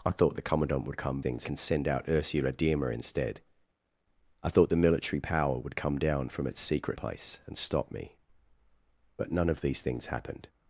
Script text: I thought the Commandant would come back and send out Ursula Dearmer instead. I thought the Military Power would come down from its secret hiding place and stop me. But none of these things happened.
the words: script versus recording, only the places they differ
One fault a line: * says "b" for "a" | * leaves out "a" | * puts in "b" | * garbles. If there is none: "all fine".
* says "things" for "back"
* leaves out "hiding"